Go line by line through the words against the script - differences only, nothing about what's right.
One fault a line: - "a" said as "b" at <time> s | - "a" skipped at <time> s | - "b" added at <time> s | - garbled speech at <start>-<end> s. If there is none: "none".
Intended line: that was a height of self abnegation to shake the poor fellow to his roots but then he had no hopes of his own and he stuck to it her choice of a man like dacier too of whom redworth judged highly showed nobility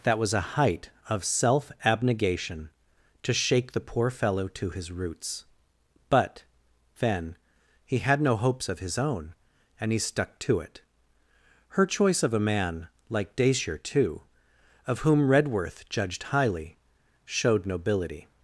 none